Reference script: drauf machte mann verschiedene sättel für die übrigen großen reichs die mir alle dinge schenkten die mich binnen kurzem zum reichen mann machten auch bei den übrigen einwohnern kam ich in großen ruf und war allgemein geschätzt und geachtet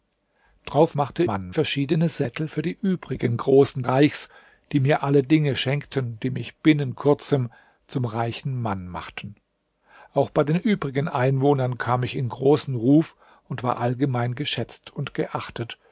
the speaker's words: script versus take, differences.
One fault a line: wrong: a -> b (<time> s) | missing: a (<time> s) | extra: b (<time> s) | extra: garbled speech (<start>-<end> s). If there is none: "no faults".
no faults